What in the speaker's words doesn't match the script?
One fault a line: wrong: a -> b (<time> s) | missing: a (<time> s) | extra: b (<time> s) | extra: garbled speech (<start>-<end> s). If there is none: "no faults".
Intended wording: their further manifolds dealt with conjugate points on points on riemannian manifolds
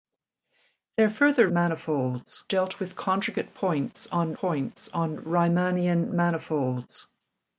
no faults